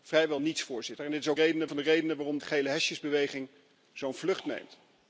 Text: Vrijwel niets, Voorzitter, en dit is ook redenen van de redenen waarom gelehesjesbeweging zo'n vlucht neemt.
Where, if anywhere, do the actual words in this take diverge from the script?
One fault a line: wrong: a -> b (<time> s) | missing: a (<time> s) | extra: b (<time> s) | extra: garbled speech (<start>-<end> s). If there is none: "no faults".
no faults